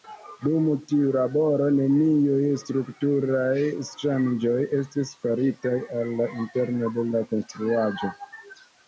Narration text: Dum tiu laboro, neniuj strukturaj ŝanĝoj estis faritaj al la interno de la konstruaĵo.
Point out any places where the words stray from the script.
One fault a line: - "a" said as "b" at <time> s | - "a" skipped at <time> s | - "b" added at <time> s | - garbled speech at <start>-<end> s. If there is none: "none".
none